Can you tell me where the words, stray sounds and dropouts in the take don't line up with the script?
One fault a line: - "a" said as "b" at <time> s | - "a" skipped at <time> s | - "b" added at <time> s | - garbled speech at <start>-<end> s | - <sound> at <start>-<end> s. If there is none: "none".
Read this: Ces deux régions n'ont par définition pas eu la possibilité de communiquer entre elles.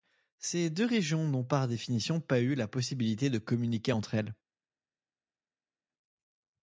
none